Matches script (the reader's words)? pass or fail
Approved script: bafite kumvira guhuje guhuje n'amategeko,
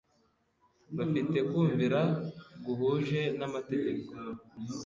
fail